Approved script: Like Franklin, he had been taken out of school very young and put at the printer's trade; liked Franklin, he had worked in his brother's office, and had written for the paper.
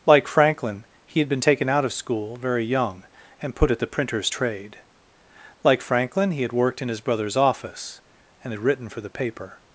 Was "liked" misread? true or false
true